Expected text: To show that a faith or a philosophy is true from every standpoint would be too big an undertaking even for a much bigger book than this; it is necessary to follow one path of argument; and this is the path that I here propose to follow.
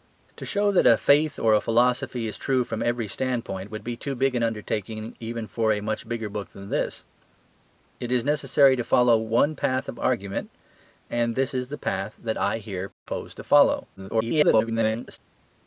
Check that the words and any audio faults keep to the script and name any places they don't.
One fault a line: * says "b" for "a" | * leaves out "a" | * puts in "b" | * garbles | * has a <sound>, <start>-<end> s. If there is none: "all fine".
* has a dropout, 12.9-13.1 s
* garbles